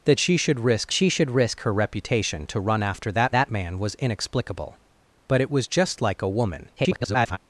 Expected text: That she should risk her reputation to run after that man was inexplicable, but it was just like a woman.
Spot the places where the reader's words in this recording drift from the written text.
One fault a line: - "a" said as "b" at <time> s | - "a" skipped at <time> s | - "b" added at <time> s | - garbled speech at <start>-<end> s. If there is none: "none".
- "she should risk" added at 0.9 s
- "that" added at 3.3 s
- garbled speech at 6.8-7.4 s